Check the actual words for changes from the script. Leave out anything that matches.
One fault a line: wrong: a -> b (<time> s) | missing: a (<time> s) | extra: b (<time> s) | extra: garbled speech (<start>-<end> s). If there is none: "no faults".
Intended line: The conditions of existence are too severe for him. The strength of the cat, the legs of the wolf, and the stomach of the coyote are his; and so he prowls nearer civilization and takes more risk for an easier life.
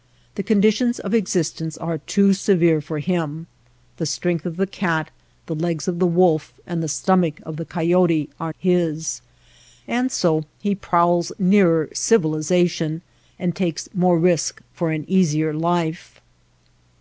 no faults